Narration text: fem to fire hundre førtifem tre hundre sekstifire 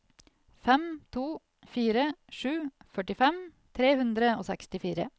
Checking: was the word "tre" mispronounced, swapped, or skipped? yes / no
no